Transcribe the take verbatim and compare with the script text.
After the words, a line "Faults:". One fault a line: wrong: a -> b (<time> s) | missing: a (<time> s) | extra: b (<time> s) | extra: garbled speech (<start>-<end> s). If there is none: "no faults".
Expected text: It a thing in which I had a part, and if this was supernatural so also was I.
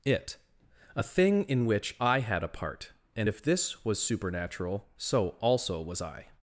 It a thing in which I had a part, and if this was supernatural so also was I.
Faults:
no faults